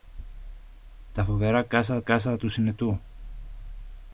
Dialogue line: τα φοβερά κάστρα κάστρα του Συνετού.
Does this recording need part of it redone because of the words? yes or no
no